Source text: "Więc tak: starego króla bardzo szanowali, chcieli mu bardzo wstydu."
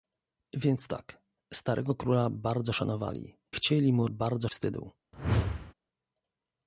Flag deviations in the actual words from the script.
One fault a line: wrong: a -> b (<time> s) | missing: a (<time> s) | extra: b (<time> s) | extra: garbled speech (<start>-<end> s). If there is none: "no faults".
no faults